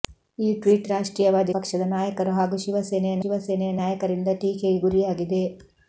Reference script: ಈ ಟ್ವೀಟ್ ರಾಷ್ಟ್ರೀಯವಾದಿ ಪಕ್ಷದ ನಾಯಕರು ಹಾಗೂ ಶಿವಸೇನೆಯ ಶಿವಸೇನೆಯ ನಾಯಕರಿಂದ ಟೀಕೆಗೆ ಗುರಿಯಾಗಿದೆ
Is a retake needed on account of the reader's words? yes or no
no